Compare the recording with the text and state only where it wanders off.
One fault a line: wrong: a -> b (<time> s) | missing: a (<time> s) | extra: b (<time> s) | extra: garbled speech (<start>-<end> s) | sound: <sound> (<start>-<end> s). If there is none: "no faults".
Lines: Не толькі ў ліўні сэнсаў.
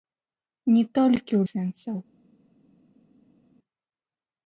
missing: ліўні (1.4 s)